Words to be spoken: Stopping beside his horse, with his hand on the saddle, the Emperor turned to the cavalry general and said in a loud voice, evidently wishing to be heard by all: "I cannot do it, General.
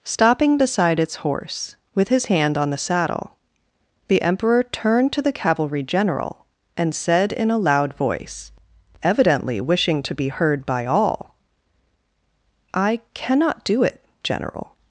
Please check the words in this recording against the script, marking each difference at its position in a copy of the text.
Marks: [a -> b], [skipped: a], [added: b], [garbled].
Stopping beside [his -> its] horse, with his hand on the saddle, the Emperor turned to the cavalry general and said in a loud voice, evidently wishing to be heard by all: "I cannot do it, General.